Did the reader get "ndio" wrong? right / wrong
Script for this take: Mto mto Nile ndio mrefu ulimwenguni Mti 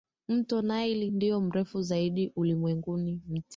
right